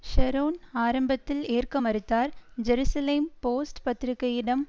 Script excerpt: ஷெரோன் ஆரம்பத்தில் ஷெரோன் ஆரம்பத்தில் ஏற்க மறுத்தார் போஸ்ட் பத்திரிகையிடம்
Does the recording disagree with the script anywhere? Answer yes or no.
yes